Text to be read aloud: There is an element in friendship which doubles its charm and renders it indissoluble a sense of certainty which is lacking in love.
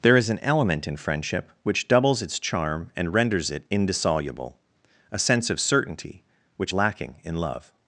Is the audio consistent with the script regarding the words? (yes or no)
no